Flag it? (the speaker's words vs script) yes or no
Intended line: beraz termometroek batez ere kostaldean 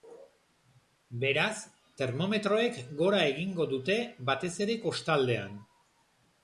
yes